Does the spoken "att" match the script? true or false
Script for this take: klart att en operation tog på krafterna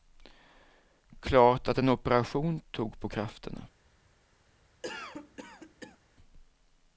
true